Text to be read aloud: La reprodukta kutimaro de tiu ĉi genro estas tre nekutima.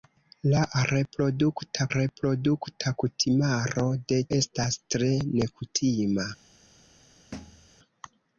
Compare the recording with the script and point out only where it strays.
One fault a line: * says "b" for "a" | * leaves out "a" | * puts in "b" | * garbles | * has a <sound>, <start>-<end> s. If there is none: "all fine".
* puts in "reprodukta"
* leaves out "tiu ĉi genro"
* has a thud, 7.3-7.7 s